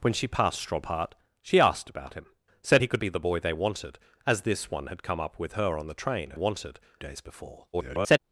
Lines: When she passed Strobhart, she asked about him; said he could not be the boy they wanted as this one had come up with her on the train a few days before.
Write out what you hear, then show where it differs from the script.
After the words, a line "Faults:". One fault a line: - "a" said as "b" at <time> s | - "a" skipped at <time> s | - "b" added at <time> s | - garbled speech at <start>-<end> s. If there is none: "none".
When she passed Strobhart, she asked about him; said he could be the boy they wanted as this one had come up with her on the train a wanted days before. [garbled]
Faults:
- "not" skipped at 3.0 s
- "few" said as "wanted" at 6.3 s
- garbled speech at 7.7-8.2 s